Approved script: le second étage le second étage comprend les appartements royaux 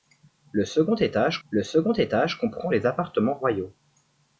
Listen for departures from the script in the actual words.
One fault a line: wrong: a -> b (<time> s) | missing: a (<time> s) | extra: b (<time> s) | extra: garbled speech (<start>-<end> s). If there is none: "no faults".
no faults